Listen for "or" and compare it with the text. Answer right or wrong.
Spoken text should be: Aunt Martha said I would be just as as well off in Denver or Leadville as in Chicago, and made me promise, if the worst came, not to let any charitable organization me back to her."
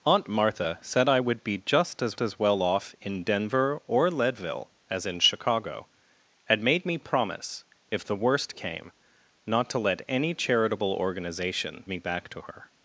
right